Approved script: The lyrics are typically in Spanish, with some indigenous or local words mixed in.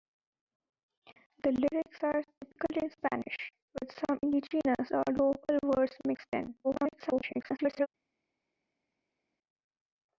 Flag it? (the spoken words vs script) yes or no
yes